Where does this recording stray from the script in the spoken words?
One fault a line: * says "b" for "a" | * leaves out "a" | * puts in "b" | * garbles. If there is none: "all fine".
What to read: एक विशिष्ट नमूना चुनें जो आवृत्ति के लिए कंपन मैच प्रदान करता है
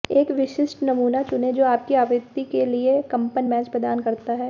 * puts in "आपकी"